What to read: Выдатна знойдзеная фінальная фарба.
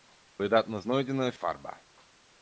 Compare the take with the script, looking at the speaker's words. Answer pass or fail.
fail